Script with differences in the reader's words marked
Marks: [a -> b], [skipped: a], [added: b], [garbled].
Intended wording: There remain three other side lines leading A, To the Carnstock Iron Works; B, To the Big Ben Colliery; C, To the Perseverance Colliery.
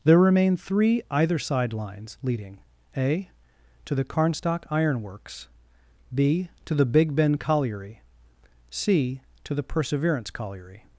There remain three [other -> either] side lines leading A, To the Carnstock Iron Works; B, To the Big Ben Colliery; C, To the Perseverance Colliery.